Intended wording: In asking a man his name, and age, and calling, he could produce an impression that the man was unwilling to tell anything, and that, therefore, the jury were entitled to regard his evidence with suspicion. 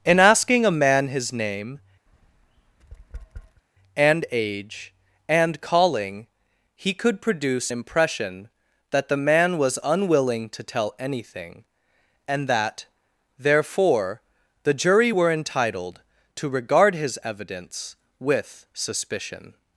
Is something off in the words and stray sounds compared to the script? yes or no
yes